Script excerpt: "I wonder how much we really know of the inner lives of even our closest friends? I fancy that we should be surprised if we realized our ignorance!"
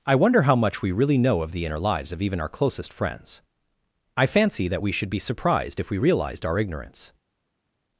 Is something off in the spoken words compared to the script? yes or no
no